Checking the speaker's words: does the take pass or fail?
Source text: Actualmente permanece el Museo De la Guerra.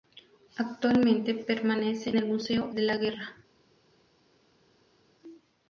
pass